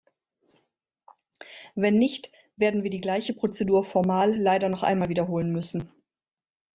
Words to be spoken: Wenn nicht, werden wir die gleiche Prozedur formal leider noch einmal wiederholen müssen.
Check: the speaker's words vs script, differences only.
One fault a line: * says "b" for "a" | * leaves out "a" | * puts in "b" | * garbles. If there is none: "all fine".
all fine